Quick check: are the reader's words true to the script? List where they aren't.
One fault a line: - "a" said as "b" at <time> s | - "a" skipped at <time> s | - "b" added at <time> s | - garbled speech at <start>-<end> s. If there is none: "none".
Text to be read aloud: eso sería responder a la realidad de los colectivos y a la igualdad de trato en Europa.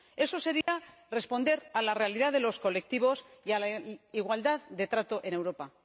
none